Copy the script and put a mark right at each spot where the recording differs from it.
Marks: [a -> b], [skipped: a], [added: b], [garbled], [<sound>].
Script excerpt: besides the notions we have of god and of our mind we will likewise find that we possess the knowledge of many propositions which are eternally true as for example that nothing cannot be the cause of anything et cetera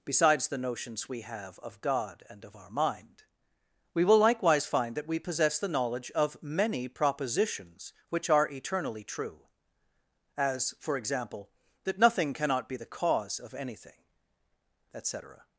besides the notions we have of god and of our mind we will likewise find that we possess the knowledge of many propositions which are eternally true as for example that nothing cannot be the cause of anything et cetera